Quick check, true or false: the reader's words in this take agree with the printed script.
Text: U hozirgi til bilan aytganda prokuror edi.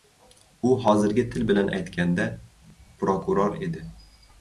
true